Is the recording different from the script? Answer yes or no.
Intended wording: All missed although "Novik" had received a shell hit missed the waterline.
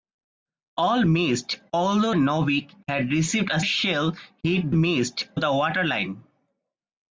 no